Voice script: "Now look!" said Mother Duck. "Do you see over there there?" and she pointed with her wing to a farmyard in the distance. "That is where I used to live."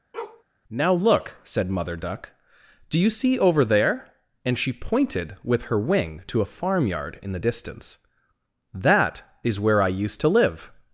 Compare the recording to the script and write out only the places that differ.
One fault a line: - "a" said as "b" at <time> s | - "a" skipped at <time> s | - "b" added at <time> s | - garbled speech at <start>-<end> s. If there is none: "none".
- "there" skipped at 4.1 s